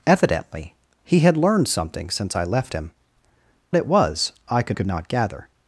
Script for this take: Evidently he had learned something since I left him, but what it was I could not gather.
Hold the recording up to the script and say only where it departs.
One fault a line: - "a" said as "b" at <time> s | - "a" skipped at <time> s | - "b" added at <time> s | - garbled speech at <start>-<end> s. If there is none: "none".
- "but what" skipped at 2.9 s
- "could" added at 4.7 s